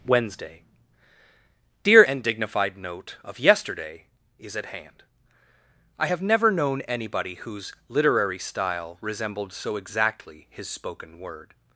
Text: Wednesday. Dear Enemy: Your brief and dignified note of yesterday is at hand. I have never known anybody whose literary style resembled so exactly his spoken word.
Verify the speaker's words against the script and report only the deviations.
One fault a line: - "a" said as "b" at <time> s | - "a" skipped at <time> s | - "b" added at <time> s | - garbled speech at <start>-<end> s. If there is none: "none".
- "Enemy Your brief" skipped at 2.0 s